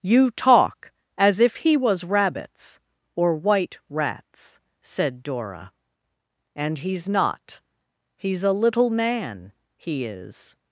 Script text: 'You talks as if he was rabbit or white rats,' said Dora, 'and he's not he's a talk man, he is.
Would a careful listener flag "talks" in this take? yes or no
yes